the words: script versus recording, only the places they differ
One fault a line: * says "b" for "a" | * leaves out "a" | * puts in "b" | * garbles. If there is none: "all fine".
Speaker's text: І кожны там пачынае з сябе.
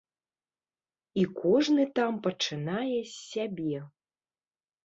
all fine